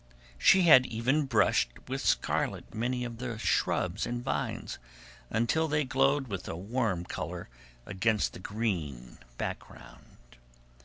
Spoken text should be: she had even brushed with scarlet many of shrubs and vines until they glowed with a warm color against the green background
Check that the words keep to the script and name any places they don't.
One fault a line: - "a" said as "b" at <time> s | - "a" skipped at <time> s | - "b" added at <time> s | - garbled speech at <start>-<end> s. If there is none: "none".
- "the" added at 3.2 s